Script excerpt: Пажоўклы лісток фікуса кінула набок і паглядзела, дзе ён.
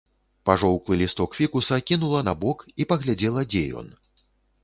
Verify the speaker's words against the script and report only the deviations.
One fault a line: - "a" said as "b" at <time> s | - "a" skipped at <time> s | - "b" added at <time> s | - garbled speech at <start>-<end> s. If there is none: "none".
none